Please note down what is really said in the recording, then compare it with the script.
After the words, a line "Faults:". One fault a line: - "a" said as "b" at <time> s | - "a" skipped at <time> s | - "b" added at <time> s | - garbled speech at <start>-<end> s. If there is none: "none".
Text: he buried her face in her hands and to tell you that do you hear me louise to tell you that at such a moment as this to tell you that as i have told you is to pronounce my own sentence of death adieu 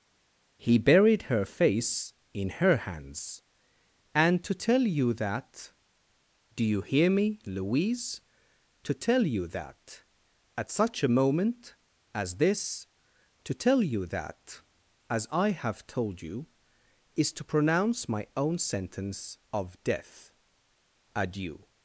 he buried her face in her hands and to tell you that do you hear me louise to tell you that at such a moment as this to tell you that as i have told you is to pronounce my own sentence of death adieu
Faults:
none